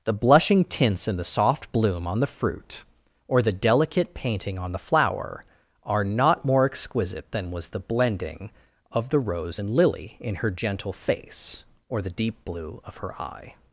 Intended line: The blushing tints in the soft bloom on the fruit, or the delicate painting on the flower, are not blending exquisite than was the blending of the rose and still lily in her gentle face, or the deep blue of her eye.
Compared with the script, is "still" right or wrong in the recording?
wrong